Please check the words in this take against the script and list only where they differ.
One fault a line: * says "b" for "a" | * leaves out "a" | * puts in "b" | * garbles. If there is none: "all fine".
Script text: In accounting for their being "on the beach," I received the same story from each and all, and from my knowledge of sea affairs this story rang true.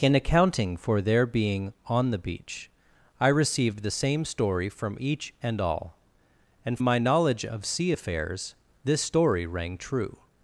* leaves out "from"